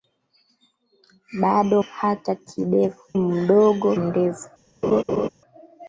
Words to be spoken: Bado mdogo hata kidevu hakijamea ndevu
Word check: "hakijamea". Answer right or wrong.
wrong